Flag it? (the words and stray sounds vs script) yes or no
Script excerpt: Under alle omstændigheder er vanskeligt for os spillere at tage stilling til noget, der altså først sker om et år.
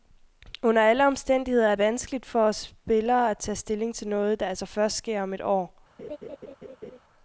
yes